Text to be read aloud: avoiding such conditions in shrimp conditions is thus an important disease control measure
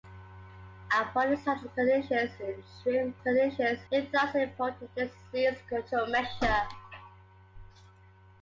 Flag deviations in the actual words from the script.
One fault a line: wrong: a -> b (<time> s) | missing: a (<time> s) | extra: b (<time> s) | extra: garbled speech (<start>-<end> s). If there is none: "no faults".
no faults